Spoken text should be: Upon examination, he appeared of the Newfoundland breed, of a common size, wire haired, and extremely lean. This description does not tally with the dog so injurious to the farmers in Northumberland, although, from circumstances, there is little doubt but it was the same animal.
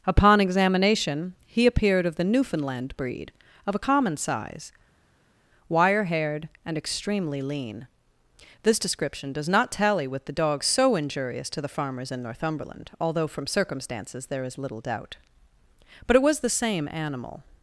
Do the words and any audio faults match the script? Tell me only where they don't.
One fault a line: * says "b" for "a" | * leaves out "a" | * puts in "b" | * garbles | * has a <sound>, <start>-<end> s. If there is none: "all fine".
all fine